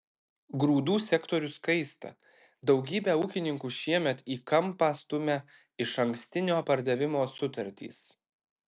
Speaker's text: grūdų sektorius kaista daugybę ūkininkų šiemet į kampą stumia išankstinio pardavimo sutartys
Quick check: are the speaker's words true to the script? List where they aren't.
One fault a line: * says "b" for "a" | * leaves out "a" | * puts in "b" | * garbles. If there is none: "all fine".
all fine